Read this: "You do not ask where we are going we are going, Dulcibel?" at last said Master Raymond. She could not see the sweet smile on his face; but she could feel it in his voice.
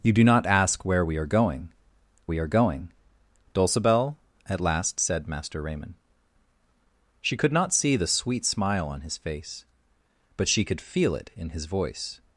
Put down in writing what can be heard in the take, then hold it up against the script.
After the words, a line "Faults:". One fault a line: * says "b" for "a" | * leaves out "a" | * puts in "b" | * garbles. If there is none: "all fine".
"You do not ask where we are going we are going, Dulcibel?" at last said Master Raymond. She could not see the sweet smile on his face; but she could feel it in his voice.
Faults:
all fine